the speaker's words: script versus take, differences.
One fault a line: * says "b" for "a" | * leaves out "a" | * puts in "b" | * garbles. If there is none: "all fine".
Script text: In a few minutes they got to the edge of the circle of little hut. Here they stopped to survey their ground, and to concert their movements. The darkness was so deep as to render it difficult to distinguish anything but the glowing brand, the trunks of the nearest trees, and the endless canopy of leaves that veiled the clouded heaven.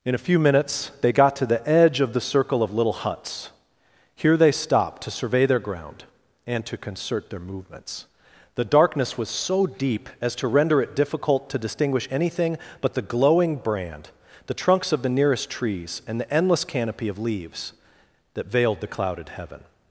* says "huts" for "hut"